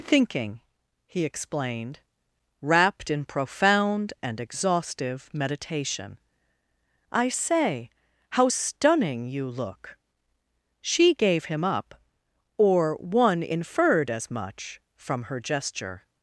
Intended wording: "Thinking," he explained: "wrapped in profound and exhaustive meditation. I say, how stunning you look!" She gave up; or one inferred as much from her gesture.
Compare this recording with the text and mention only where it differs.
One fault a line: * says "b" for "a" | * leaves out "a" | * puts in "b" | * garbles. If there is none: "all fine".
* puts in "him"